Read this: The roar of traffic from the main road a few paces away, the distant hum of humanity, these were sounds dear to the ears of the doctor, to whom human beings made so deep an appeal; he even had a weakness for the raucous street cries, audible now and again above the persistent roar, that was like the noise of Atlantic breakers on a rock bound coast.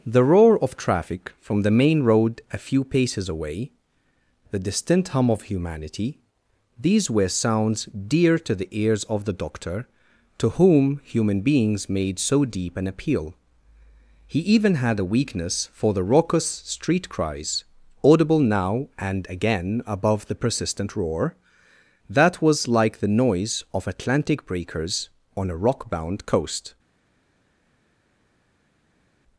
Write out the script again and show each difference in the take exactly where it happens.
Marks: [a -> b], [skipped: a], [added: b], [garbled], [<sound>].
The roar of traffic from the main road a few paces away, the distant hum of humanity, these were sounds dear to the ears of the doctor, to whom human beings made so deep an appeal; he even had a weakness for the raucous street cries, audible now and again above the persistent roar, that was like the noise of Atlantic breakers on a rock bound coast.